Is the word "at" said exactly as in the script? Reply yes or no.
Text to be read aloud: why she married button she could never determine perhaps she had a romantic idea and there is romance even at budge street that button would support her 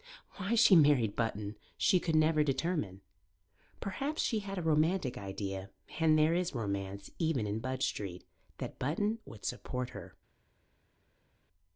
no